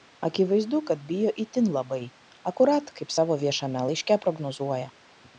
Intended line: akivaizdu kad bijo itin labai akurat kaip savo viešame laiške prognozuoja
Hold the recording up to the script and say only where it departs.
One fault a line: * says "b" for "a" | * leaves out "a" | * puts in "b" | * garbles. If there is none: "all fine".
all fine